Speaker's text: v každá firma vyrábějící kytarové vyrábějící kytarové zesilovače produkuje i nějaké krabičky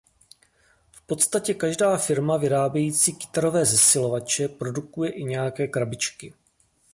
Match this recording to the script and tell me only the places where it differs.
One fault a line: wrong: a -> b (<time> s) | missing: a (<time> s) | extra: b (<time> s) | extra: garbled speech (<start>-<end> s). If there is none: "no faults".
extra: podstatě (1.0 s)
missing: vyrábějící kytarové (3.6 s)